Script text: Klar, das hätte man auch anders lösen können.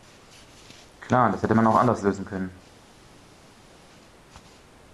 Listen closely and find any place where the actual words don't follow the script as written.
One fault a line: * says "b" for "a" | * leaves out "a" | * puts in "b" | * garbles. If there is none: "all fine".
all fine